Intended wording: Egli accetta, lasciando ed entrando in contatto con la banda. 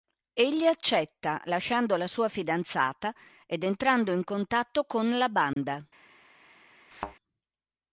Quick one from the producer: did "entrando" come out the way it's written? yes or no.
yes